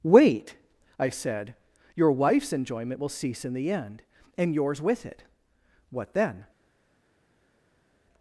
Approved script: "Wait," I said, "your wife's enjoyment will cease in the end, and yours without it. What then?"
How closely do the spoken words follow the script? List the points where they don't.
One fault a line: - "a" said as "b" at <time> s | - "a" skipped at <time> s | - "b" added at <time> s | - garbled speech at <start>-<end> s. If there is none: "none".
- "without" said as "with" at 4.8 s